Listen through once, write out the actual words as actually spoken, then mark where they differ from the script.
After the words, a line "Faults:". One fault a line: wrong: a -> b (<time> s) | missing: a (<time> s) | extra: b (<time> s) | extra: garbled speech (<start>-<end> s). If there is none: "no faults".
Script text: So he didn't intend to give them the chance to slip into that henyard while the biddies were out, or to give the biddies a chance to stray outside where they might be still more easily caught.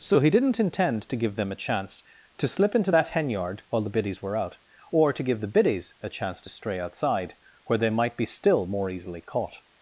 So he didn't intend to give them a chance to slip into that henyard while the biddies were out, or to give the biddies a chance to stray outside where they might be still more easily caught.
Faults:
wrong: the -> a (1.5 s)